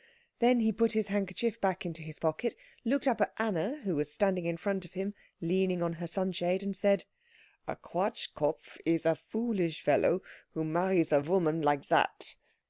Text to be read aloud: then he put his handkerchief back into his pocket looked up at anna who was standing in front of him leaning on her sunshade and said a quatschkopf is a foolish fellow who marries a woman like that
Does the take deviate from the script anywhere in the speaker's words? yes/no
no